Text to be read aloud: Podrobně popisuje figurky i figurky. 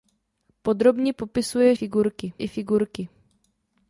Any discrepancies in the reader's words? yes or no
no